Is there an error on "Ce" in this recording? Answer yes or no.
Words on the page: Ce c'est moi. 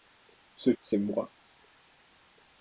no